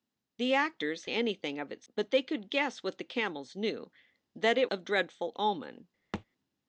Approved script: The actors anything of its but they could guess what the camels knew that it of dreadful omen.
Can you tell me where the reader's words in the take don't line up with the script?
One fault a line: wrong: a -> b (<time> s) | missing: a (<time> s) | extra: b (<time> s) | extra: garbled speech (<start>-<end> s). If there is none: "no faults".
no faults